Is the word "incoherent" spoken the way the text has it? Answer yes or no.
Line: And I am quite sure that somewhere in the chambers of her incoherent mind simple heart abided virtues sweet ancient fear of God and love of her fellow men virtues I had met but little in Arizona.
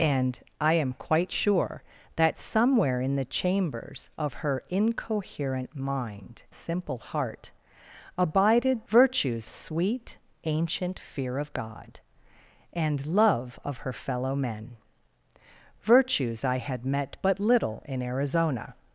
yes